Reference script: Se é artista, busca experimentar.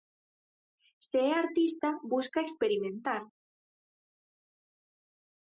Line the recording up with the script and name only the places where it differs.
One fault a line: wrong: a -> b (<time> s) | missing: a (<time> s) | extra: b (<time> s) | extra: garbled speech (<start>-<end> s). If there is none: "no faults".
no faults